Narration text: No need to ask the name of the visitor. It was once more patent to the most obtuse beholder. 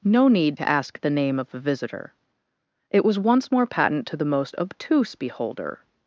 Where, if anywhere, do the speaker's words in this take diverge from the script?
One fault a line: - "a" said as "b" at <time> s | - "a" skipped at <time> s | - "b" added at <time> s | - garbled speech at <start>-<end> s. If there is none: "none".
none